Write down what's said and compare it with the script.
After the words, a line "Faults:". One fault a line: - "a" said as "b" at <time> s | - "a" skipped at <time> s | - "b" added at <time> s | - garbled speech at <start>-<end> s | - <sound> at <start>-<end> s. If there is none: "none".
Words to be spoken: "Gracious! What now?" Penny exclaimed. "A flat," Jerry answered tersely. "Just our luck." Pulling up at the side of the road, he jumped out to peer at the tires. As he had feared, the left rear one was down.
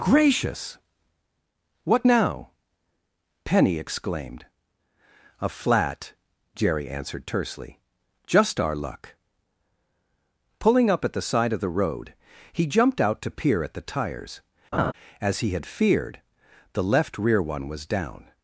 "Gracious! What now?" Penny exclaimed. "A flat," Jerry answered tersely. "Just our luck." Pulling up at the side of the road, he jumped out to peer at the tires. As he had feared, the left rear one was down.
Faults:
- laugh at 14.7-14.9 s